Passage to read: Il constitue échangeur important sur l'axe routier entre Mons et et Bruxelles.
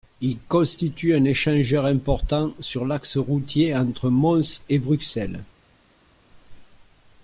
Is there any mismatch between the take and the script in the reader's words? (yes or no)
yes